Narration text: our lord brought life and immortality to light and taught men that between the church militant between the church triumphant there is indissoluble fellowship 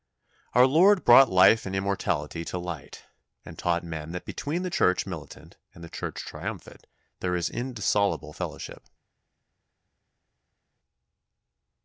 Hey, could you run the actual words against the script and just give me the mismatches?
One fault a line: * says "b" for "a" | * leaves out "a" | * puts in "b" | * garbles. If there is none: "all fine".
* says "and" for "between"